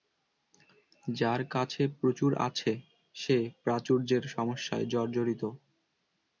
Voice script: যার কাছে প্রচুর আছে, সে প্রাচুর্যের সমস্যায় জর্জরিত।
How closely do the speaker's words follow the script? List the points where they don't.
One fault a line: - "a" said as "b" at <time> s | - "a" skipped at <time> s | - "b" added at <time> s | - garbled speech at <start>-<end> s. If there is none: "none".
none